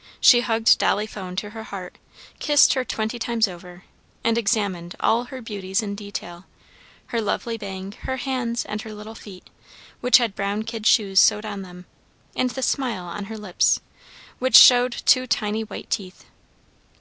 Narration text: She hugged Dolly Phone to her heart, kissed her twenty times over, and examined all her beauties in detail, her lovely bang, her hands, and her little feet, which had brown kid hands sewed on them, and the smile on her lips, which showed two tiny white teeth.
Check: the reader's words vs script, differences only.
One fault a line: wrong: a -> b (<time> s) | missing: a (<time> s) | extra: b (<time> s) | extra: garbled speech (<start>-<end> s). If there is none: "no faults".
wrong: hands -> shoes (10.9 s)